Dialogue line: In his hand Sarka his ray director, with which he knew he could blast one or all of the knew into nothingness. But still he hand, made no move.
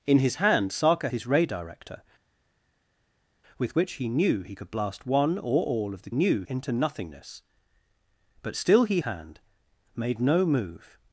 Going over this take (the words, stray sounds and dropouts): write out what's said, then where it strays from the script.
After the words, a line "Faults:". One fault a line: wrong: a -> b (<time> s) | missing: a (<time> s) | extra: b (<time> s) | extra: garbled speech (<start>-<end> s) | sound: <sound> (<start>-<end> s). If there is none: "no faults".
In his hand Sarka his ray director, with which he knew he could blast one or all of the knew into nothingness. But still he hand, made no move.
Faults:
no faults